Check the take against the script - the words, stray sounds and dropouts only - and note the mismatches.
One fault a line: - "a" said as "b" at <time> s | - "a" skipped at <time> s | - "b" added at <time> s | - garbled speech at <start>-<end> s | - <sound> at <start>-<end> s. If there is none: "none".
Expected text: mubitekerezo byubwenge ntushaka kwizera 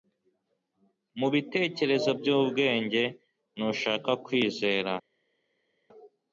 none